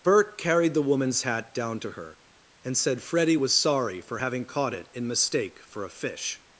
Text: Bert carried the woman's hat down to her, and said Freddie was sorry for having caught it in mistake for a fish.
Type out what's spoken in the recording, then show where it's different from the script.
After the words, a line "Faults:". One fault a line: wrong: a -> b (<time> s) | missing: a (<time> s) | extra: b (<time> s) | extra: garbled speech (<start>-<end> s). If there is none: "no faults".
Bert carried the woman's hat down to her, and said Freddie was sorry for having caught it in mistake for a fish.
Faults:
no faults